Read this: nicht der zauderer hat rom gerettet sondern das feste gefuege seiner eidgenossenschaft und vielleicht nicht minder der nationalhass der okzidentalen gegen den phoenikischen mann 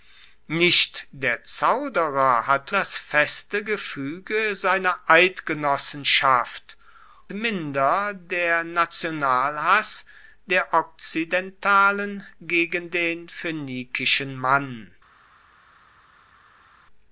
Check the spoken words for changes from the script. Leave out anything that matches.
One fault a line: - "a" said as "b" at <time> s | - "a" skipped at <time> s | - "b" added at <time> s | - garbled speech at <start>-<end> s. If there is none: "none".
- "rom gerettet sondern" skipped at 2.7 s
- "und vielleicht nicht" skipped at 6.8 s